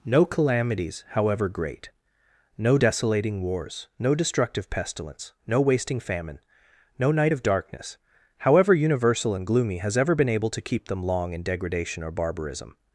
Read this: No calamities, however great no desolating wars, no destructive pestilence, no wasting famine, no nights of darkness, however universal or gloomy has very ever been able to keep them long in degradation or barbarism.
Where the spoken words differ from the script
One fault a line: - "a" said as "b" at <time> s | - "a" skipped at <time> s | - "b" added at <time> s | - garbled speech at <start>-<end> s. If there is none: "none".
- "nights" said as "night" at 7.1 s
- "or" said as "and" at 9.3 s
- "very" skipped at 10.0 s